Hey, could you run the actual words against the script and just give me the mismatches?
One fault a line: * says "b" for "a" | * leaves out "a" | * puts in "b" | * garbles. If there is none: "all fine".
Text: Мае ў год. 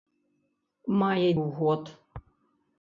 all fine